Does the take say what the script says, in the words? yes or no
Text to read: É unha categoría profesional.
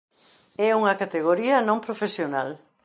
no